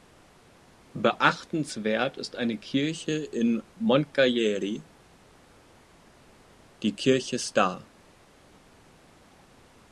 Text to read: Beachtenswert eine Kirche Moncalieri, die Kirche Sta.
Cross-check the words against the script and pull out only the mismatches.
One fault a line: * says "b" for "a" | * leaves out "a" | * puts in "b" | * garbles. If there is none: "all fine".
* puts in "ist"
* puts in "in"